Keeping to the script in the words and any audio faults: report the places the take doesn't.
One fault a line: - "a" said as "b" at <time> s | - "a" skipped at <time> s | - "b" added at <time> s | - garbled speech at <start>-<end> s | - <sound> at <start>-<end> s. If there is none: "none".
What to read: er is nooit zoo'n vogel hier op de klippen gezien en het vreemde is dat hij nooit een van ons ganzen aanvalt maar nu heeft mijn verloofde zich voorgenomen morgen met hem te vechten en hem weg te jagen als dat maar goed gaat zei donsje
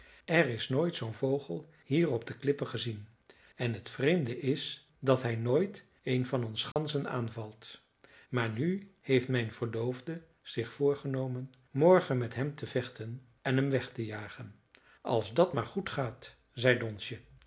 - dropout at 6.7-6.8 s